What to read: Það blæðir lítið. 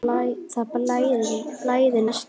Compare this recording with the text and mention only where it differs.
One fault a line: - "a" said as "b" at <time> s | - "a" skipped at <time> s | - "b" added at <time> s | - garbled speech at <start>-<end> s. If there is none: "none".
none